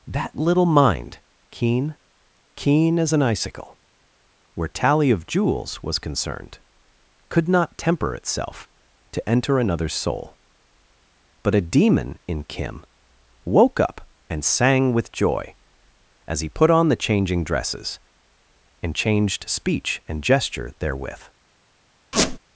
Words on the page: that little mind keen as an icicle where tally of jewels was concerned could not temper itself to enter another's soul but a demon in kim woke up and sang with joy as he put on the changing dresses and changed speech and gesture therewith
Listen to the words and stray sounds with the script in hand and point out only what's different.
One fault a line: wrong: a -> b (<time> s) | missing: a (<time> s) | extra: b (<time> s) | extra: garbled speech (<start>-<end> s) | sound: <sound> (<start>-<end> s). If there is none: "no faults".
extra: keen (2.6 s)
sound: squeak (22.1-22.4 s)